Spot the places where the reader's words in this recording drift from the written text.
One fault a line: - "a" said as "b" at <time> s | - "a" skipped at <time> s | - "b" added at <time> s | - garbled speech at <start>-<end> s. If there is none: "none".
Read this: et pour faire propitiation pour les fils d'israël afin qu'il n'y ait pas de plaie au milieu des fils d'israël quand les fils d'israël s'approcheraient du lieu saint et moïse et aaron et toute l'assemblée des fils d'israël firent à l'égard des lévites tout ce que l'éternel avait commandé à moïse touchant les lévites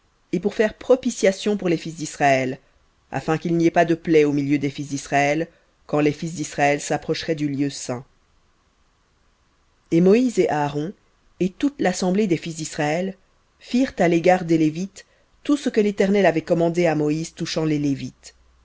none